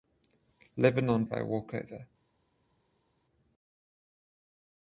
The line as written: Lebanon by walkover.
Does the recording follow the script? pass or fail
pass